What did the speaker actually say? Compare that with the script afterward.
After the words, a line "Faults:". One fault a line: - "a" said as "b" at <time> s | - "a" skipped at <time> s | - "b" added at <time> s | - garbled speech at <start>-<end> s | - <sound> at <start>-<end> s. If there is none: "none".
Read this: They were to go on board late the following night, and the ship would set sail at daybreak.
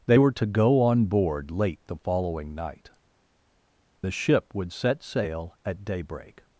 They were to go on board late the following night, the ship would set sail at daybreak.
Faults:
- "and" skipped at 2.9 s